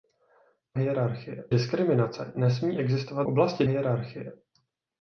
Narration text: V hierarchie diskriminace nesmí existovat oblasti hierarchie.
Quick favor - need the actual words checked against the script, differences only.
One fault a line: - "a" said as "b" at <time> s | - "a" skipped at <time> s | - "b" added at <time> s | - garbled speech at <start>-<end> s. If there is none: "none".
none